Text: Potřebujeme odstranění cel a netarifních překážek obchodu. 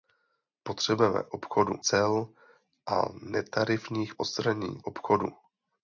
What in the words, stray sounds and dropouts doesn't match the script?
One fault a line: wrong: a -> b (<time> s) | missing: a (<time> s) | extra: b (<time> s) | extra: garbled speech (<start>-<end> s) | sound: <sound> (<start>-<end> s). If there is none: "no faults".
wrong: odstranění -> obchodu (1.3 s)
wrong: překážek -> odstranění (4.2 s)